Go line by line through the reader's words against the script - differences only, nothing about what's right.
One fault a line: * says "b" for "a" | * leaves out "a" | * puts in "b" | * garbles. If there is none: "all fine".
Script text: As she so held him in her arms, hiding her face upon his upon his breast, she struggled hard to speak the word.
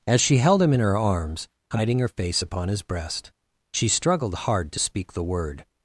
* leaves out "so"
* leaves out "upon his"